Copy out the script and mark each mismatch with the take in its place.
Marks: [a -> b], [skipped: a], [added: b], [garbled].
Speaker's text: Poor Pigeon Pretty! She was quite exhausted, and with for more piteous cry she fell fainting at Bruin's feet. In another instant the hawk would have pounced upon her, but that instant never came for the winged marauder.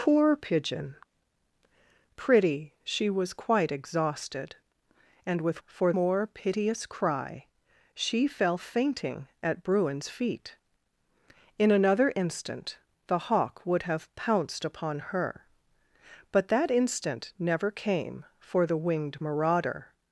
Poor Pigeon Pretty! She was quite exhausted, and with for more piteous cry she fell fainting at Bruin's feet. In another instant the hawk would have pounced upon her, but that instant never came for the winged marauder.